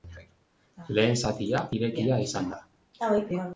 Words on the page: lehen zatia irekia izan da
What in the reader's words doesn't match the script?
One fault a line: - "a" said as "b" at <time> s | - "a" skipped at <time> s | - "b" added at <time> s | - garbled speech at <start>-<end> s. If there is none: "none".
none